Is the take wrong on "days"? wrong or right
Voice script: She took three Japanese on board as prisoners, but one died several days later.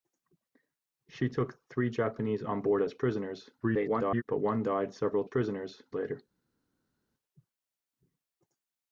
wrong